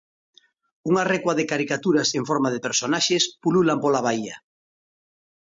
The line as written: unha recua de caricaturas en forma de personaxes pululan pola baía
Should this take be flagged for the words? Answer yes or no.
no